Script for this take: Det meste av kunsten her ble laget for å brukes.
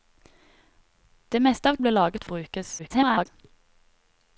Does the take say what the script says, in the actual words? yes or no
no